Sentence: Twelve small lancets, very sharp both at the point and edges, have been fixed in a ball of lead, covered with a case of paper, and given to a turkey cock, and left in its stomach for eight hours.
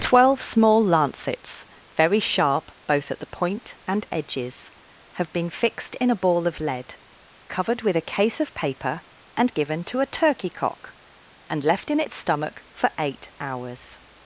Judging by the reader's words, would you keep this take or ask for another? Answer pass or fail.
pass